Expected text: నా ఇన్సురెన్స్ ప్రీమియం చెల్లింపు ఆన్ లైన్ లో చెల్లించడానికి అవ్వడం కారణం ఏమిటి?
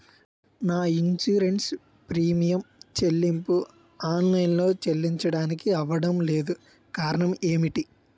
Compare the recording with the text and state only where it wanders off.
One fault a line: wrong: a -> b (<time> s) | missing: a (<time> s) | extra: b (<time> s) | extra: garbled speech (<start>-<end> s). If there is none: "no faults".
extra: లేదు (6.3 s)